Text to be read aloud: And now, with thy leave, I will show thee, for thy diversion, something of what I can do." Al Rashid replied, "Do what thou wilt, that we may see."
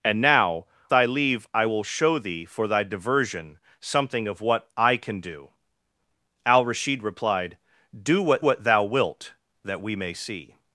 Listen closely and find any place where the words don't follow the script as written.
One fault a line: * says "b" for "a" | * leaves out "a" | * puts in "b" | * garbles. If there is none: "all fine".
* leaves out "with"
* puts in "what"